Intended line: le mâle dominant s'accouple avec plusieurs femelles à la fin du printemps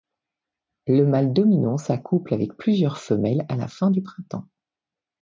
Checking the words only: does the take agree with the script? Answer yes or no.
yes